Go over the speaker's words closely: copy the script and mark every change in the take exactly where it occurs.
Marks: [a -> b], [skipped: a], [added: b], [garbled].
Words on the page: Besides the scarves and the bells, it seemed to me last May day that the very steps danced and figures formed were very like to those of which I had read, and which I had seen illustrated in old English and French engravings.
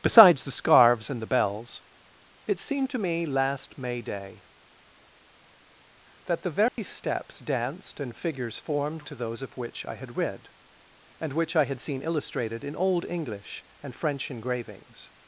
Besides the scarves and the bells, it seemed to me last May day that the very steps danced and figures formed [skipped: were very like] to those of which I had read, and which I had seen illustrated in old English and French engravings.